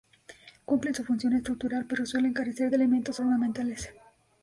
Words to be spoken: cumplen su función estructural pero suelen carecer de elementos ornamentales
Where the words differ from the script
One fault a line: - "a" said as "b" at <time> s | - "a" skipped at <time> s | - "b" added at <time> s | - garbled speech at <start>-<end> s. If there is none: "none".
none